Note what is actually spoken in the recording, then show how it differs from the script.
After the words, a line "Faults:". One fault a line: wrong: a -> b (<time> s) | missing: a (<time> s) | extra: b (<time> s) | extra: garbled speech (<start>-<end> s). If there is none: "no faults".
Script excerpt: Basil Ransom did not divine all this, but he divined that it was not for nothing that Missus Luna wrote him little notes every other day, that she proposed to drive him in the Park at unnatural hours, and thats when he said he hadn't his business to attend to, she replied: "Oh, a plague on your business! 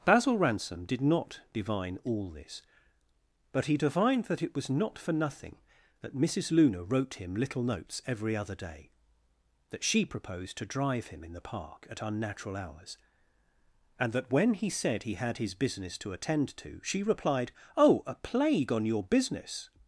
Basil Ransom did not divine all this, but he divined that it was not for nothing that Missus Luna wrote him little notes every other day, that she proposed to drive him in the Park at unnatural hours, and that when he said he had his business to attend to, she replied: "Oh, a plague on your business!
Faults:
wrong: thats -> that (14.1 s)
wrong: hadn't -> had (15.1 s)